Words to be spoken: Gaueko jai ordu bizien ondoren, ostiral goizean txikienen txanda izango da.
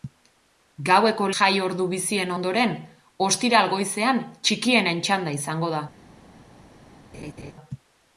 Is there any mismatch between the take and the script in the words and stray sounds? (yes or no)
yes